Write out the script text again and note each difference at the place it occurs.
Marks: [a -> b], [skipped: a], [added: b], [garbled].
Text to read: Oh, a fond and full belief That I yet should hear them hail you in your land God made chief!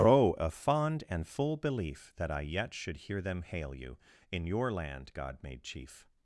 Oh, a fond and full belief That I yet should hear them hail you in your land God made chief!